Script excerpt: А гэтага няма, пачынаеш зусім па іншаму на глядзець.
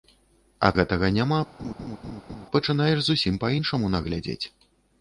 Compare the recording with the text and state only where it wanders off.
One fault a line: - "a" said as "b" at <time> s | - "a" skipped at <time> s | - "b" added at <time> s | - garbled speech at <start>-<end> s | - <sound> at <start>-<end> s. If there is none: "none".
- laugh at 1.6-2.5 s